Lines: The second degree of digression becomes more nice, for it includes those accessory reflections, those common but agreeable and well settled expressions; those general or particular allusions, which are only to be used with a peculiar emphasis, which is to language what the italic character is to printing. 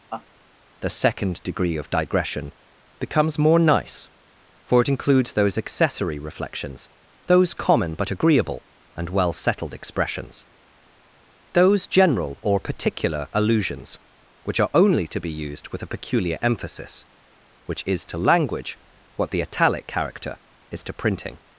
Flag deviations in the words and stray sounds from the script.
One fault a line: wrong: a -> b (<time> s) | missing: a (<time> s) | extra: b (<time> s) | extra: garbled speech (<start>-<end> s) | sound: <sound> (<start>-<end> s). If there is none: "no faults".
sound: laugh (0.1-0.3 s)